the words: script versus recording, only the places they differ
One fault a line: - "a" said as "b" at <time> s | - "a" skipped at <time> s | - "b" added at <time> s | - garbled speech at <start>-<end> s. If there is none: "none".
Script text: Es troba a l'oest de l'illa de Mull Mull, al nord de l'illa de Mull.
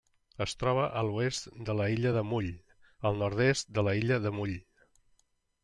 - "Mull" skipped at 2.5 s
- "est" added at 3.5 s